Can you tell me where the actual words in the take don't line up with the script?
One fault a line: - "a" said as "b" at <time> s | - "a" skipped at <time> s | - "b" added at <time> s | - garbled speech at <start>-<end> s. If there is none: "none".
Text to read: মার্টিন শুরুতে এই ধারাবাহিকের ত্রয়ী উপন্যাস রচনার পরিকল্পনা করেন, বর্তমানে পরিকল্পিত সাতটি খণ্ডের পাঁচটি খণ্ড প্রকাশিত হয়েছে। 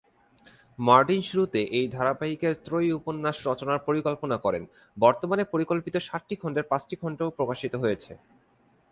none